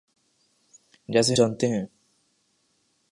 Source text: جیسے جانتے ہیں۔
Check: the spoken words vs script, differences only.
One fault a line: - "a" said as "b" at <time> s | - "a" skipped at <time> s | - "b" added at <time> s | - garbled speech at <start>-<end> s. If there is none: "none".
none